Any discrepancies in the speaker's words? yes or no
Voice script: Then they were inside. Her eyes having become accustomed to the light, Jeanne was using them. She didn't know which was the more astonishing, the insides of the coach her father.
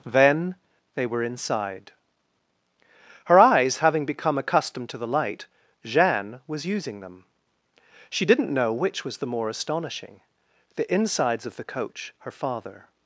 no